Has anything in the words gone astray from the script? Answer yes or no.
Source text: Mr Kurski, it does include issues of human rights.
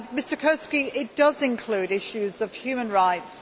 no